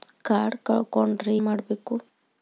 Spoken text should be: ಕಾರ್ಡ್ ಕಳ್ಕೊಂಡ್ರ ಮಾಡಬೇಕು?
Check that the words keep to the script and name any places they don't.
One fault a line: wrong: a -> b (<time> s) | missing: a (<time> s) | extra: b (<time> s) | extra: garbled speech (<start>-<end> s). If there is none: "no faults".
no faults